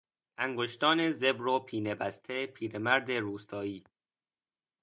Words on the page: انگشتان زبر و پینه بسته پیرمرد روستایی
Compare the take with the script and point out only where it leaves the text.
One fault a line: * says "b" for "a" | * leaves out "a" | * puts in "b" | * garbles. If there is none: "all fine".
all fine